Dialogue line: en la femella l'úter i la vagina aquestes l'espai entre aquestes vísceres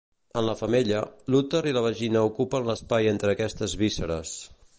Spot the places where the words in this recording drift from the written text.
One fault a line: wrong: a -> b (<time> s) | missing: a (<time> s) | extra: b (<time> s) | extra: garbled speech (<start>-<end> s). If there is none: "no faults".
wrong: aquestes -> ocupen (2.3 s)